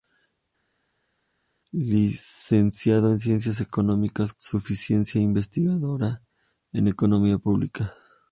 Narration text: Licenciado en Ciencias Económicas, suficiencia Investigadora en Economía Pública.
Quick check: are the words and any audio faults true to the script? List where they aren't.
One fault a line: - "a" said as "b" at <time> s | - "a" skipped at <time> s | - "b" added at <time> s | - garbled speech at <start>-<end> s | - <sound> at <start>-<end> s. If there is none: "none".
none